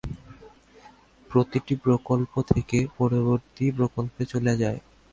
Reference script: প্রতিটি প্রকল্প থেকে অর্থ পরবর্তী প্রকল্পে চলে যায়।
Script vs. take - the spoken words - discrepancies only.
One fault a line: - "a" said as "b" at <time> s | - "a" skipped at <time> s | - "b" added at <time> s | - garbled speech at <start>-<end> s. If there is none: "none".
- "অর্থ" skipped at 2.8 s